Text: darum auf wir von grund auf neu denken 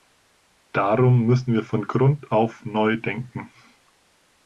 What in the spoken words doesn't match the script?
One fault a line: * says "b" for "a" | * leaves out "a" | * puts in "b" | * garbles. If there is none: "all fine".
* says "müssen" for "auf"